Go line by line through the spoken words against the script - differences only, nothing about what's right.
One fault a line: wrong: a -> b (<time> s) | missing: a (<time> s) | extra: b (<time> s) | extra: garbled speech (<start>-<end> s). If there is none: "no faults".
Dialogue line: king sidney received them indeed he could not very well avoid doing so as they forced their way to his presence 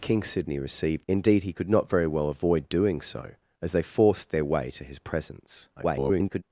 missing: them (1.1 s)
extra: garbled speech (5.8-6.4 s)